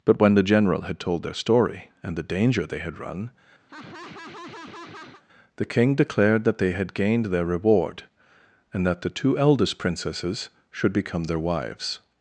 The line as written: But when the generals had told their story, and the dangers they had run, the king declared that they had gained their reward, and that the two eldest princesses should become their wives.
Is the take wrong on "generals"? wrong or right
wrong